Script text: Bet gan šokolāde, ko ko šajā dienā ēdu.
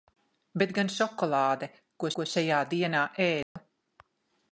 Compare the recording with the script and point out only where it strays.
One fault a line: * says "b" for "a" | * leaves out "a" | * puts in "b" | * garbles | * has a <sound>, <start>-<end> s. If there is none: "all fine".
* has a dropout, 3.4-3.6 s